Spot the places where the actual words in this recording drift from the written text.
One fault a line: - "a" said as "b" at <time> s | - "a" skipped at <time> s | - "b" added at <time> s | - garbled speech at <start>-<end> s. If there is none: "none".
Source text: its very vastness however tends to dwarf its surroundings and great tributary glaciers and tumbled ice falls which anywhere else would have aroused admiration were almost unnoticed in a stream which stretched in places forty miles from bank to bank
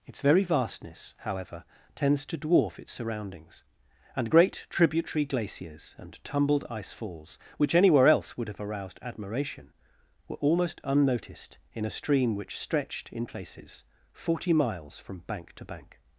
none